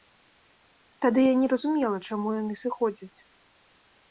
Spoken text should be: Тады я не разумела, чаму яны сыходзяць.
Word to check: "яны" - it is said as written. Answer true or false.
true